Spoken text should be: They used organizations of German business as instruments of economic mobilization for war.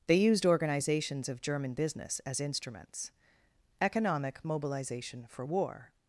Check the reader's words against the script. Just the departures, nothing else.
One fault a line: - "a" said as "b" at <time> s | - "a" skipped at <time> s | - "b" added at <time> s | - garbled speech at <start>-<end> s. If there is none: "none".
- "of" skipped at 3.1 s